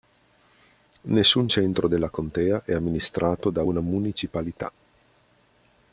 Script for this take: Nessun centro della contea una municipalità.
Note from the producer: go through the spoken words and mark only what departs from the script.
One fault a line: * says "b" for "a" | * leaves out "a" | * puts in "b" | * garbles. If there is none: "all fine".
* puts in "è amministrato da"